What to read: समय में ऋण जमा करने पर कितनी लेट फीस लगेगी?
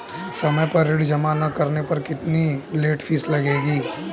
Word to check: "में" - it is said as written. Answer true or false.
false